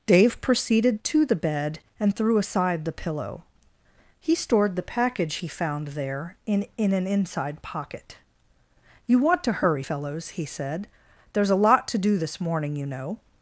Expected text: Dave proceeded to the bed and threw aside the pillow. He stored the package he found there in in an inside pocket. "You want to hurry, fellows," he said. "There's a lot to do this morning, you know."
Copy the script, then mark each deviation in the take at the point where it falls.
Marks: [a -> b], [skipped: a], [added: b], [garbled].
Dave proceeded to the bed and threw aside the pillow. He stored the package he found there in in an inside pocket. "You want to hurry, fellows," he said. "There's a lot to do this morning, you know."